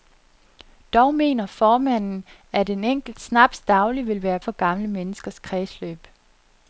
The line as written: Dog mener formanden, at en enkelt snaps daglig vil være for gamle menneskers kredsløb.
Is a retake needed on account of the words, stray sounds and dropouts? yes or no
no